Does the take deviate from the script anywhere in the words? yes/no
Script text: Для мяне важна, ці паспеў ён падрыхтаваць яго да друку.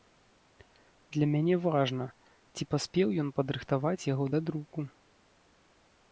no